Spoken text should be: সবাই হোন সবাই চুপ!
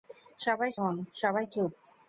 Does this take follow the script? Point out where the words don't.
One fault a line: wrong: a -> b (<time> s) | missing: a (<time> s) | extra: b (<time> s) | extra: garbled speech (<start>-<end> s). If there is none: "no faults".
no faults